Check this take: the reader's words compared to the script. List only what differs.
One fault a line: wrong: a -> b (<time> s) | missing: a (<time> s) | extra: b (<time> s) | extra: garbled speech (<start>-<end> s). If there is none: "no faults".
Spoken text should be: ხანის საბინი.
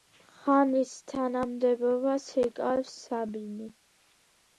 extra: თანამდებობას იკავებს (1.1 s)